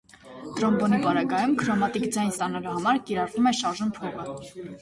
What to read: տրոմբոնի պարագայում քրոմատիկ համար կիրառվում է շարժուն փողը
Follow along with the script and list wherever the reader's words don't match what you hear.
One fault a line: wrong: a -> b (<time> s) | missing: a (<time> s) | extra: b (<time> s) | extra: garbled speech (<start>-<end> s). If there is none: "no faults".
extra: ձայն ստանալու (2.2 s)